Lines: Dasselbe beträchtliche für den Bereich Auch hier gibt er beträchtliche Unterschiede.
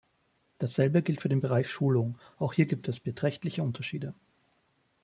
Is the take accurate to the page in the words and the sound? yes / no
no